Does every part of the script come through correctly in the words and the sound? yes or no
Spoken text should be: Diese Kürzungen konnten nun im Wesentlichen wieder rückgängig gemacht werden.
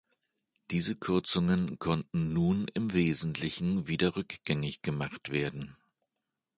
yes